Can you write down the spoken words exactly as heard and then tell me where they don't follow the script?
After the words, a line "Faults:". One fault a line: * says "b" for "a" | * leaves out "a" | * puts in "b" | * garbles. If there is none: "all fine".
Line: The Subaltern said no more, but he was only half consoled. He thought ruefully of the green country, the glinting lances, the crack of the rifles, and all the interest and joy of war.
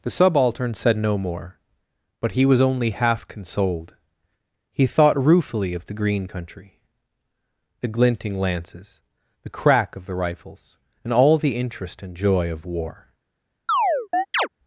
The Subaltern said no more, but he was only half consoled. He thought ruefully of the green country, the glinting lances, the crack of the rifles, and all the interest and joy of war.
Faults:
all fine